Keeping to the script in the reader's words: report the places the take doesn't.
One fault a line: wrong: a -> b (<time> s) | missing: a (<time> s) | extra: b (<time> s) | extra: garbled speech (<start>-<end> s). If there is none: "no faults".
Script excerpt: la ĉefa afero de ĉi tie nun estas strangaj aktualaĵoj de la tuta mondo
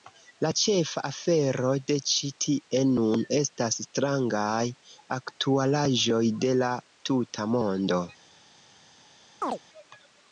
no faults